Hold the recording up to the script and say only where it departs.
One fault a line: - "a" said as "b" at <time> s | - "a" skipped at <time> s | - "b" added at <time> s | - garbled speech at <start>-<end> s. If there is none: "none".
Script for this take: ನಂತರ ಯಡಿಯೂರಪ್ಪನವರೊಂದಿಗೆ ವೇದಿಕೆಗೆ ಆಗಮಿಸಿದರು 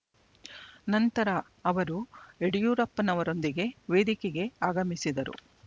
- "ಅವರು" added at 1.6 s